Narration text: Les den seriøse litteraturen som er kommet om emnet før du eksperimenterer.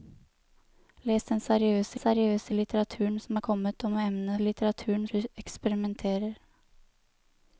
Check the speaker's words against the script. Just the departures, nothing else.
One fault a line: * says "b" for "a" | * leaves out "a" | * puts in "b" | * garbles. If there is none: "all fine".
* puts in "seriøse"
* says "litteraturen" for "før"